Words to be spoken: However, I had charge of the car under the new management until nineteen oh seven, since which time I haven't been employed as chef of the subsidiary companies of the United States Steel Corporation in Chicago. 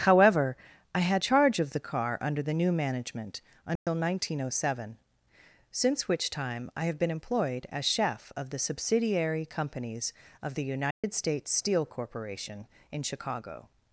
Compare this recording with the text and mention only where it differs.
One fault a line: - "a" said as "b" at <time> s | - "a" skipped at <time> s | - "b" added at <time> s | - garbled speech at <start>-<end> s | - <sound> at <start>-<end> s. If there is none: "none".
- dropout at 3.8-3.9 s
- "haven't" said as "have" at 6.8 s
- dropout at 10.9-11.0 s